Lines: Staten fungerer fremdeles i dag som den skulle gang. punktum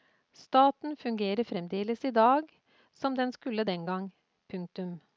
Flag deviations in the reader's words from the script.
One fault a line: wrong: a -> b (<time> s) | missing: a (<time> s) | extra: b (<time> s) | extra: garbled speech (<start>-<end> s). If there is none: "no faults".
extra: den (3.6 s)